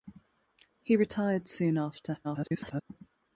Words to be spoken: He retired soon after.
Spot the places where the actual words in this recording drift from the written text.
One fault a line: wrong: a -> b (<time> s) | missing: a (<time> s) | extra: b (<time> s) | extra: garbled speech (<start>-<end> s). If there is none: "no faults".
extra: garbled speech (2.2-2.8 s)